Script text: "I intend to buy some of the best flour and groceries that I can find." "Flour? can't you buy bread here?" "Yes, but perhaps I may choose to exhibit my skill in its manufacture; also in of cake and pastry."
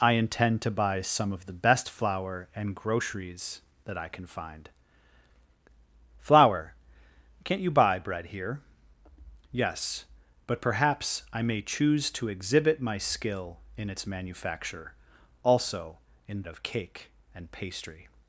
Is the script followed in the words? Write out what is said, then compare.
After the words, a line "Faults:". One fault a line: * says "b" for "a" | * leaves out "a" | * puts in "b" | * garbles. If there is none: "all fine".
"I intend to buy some of the best flour and groceries that I can find." "Flour? can't you buy bread here?" "Yes, but perhaps I may choose to exhibit my skill in its manufacture; also in of cake and pastry."
Faults:
all fine